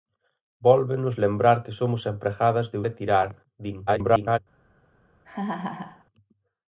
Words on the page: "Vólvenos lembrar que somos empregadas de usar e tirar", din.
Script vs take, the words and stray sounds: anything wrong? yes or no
yes